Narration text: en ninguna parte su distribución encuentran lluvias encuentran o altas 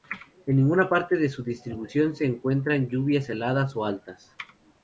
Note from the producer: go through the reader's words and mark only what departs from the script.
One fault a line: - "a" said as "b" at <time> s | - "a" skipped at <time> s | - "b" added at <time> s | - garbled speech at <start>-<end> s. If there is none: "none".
- "de" added at 1.2 s
- "se" added at 2.2 s
- "encuentran" said as "heladas" at 3.3 s